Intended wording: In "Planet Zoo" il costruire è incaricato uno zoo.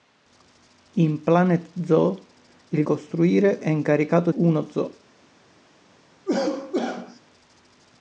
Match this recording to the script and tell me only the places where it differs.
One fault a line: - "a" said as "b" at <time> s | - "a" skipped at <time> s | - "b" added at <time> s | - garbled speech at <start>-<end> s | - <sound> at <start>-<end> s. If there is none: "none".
- cough at 6.3-7.2 s